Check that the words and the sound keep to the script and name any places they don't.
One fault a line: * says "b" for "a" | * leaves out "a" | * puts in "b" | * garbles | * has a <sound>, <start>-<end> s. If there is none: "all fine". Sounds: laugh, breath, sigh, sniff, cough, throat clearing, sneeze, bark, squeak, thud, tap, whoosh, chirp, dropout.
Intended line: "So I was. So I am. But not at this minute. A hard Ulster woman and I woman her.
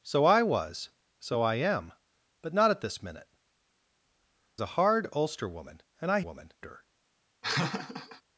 * has a laugh, 7.4-8.2 s